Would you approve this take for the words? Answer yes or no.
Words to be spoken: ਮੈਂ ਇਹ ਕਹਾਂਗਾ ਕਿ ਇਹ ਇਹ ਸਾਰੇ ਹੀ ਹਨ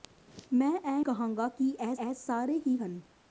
yes